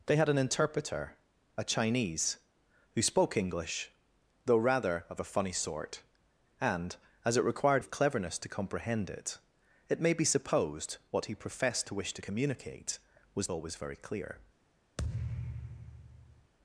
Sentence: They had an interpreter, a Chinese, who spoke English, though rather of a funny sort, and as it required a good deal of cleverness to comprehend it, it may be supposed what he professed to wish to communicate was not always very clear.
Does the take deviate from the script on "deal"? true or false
true